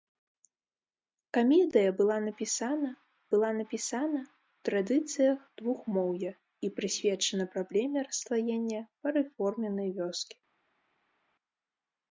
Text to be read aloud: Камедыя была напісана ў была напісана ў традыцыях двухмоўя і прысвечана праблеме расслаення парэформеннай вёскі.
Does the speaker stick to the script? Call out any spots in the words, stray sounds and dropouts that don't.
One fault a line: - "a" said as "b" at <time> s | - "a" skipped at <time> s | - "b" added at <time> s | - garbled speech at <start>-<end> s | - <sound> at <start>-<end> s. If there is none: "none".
none